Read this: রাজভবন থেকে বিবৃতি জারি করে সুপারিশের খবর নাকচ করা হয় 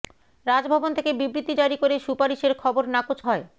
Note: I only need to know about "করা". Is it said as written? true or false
false